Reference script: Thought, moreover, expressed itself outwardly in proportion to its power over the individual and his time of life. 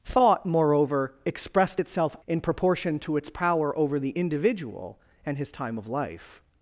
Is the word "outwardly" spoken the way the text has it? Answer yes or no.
no